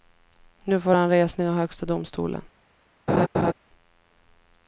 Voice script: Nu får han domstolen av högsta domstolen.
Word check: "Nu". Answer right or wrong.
right